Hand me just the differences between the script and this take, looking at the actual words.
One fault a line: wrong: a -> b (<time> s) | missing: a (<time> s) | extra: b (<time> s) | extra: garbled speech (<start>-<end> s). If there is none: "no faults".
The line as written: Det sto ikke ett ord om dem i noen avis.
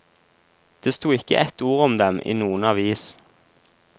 no faults